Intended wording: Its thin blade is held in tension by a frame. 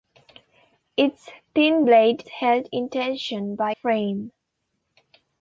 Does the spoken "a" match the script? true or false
false